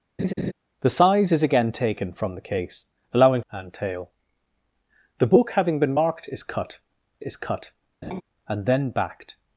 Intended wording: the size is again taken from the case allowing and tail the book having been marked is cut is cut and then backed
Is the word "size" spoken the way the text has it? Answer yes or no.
yes